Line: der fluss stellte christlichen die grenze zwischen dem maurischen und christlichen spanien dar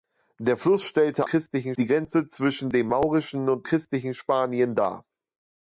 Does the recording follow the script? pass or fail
pass